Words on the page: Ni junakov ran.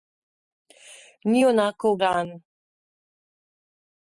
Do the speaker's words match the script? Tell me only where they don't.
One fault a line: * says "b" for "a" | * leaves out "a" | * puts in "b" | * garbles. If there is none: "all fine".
all fine